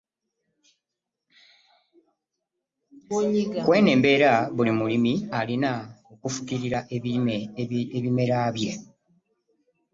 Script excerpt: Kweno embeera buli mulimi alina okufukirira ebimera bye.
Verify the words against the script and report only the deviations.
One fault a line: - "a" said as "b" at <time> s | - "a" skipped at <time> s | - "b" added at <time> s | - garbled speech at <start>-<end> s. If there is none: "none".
none